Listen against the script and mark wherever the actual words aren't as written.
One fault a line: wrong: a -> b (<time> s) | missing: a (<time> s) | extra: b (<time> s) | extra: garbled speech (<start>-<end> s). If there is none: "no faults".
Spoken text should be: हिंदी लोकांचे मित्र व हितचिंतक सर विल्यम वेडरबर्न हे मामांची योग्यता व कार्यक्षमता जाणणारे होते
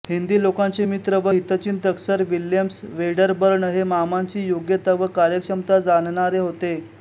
no faults